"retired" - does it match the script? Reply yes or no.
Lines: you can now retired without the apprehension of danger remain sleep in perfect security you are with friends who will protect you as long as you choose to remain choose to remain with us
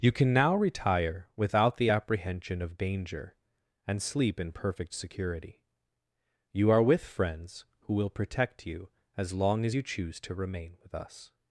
no